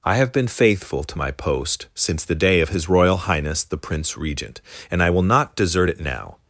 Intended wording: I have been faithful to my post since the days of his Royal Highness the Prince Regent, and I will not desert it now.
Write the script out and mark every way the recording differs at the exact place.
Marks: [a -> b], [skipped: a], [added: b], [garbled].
I have been faithful to my post since the [days -> day] of his Royal Highness the Prince Regent, and I will not desert it now.